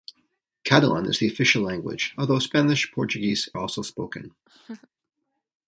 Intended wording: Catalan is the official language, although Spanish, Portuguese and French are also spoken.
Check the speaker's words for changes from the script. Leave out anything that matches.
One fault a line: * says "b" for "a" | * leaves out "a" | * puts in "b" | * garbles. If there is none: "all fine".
* leaves out "and French are"